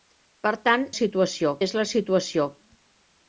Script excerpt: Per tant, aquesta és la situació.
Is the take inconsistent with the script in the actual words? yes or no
yes